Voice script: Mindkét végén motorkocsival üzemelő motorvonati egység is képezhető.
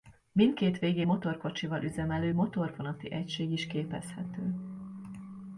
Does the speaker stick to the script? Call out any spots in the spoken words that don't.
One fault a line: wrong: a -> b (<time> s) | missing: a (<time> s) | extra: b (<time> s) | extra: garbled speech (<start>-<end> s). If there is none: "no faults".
no faults